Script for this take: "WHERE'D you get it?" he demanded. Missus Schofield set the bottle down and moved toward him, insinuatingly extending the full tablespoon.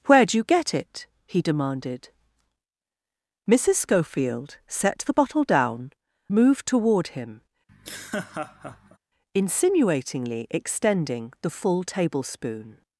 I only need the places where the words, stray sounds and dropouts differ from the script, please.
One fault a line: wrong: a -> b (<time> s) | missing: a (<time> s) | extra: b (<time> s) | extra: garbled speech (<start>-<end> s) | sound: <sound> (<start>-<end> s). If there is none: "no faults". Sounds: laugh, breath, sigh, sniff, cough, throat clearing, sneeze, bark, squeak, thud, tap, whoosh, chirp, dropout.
missing: and (5.9 s)
sound: laugh (7.7-9.0 s)